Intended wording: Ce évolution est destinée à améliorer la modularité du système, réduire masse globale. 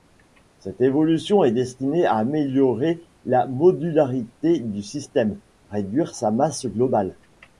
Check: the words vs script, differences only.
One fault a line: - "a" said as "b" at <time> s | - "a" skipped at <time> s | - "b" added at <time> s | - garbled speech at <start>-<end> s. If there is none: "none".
- "Ce" said as "Cette" at 0.6 s
- "sa" added at 6.2 s